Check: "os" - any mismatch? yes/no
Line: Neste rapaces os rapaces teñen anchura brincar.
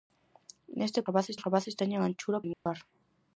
no